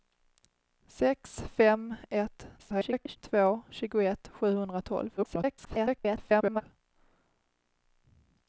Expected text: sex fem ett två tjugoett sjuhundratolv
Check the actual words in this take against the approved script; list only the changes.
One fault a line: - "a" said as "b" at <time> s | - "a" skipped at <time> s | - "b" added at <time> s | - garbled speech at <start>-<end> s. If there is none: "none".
- garbled speech at 2.6-3.2 s
- garbled speech at 5.2-6.6 s